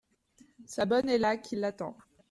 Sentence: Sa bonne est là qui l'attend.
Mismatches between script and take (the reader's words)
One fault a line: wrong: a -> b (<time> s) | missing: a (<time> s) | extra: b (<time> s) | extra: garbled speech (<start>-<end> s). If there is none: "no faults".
no faults